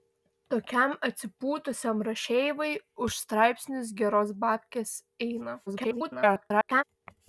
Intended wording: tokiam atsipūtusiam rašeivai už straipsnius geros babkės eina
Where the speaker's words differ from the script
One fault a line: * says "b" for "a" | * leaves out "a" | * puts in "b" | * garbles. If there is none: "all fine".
* garbles